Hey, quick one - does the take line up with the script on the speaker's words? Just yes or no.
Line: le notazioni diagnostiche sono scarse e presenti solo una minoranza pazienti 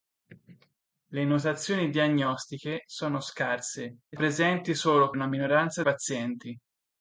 yes